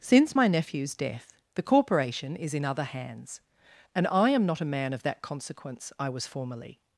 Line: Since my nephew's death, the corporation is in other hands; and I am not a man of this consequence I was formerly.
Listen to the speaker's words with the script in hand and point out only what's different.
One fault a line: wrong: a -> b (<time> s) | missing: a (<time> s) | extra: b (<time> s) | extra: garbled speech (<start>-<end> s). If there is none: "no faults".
wrong: this -> that (5.0 s)